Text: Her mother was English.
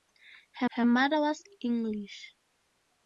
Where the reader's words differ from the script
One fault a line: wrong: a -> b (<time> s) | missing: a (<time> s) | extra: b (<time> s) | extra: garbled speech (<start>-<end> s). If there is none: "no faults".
extra: her (0.7 s)